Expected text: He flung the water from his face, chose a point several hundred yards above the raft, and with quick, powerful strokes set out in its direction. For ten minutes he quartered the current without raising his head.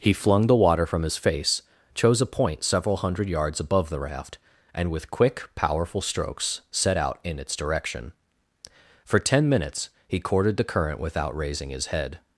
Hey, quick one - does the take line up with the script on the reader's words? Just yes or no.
no